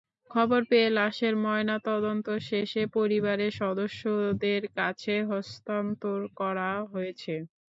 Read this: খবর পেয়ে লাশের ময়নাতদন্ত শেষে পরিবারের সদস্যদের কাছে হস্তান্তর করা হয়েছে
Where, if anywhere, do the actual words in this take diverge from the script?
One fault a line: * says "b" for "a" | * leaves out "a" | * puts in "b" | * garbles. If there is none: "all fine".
all fine